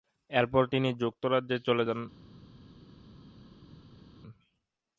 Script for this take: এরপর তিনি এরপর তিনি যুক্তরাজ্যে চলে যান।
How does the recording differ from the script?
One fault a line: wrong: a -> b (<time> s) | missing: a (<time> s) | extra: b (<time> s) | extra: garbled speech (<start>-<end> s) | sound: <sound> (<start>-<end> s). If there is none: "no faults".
missing: এরপর তিনি (0.9 s)